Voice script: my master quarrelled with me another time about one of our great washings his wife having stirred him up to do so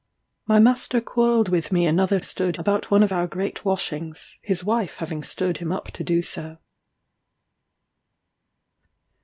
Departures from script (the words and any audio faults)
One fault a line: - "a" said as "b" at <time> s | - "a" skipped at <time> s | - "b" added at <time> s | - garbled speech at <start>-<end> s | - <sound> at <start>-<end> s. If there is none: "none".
- "time" said as "stirred" at 2.2 s